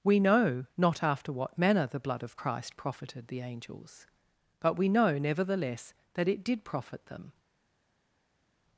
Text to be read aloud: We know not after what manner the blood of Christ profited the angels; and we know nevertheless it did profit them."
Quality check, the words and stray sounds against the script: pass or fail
fail